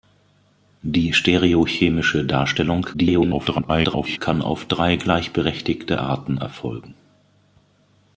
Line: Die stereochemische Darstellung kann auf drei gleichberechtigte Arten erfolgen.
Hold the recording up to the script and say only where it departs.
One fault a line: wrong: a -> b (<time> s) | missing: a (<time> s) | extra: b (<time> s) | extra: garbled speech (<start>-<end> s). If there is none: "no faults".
extra: garbled speech (2.9-4.2 s)